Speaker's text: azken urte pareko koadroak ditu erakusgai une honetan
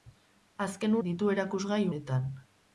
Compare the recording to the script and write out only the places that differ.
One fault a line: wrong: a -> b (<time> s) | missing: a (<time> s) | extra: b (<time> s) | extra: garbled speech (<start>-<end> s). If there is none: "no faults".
missing: urte pareko koadroak (0.9 s)
missing: une (1.9 s)